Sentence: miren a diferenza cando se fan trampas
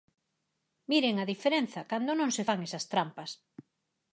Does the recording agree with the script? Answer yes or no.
no